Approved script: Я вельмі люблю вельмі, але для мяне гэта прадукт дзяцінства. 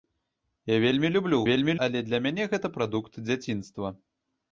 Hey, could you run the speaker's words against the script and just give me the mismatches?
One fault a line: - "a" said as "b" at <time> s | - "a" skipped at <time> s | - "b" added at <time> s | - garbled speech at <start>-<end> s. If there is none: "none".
none